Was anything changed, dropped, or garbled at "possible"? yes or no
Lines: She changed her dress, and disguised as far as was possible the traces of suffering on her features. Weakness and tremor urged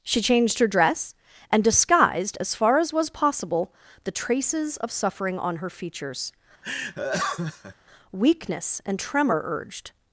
no